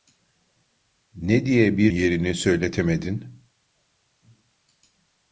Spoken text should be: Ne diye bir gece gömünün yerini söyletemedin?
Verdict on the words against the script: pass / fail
fail